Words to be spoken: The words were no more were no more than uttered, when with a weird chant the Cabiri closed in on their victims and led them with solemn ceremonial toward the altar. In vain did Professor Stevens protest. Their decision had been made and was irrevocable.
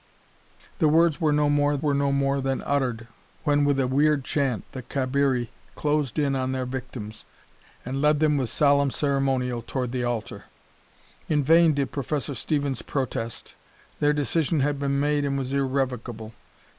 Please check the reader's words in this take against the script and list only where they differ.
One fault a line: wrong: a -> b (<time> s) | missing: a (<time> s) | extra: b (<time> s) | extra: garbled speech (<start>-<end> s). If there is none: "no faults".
no faults